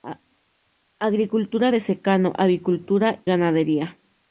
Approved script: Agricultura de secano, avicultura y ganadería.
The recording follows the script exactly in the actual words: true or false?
false